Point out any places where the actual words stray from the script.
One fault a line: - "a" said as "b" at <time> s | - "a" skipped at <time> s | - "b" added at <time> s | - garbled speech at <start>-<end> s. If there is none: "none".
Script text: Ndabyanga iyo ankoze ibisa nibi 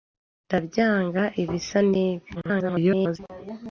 - "iyo ankoze" skipped at 1.2 s
- garbled speech at 2.3-3.2 s